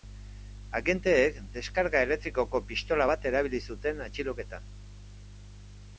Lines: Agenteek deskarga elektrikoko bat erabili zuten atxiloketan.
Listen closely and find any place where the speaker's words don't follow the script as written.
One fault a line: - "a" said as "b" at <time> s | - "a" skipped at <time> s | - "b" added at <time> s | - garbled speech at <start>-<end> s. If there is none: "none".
- "pistola" added at 2.7 s